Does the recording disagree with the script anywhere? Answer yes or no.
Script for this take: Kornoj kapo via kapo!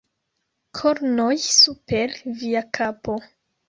yes